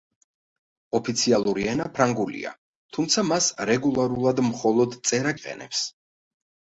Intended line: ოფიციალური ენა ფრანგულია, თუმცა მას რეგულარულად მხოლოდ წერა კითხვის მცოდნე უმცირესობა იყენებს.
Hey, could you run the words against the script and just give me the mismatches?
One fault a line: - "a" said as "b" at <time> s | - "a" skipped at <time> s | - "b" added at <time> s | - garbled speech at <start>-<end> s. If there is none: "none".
- "კითხვის მცოდნე უმცირესობა" skipped at 5.4 s